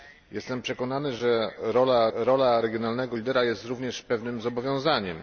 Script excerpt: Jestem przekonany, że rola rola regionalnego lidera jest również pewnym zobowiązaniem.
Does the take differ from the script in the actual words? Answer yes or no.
no